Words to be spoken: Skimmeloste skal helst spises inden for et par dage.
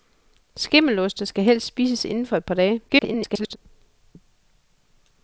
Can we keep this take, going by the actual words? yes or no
no